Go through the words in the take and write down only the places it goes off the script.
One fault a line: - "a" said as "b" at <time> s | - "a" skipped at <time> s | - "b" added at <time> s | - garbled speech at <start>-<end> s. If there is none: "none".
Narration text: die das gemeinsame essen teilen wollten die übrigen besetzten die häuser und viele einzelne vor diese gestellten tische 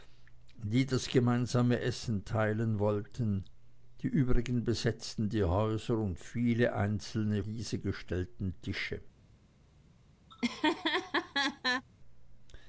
- "vor" skipped at 7.4 s